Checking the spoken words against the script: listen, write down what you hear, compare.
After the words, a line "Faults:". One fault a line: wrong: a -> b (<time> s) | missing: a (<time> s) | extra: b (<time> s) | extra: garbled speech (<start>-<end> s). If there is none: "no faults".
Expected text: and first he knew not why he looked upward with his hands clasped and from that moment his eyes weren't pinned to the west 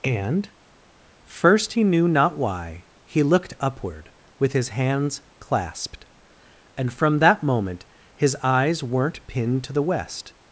and first he knew not why he looked upward with his hands clasped and from that moment his eyes weren't pinned to the west
Faults:
no faults